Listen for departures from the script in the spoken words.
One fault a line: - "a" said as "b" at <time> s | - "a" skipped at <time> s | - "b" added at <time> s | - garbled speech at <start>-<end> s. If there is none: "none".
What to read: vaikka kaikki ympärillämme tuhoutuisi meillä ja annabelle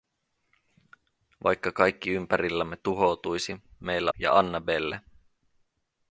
none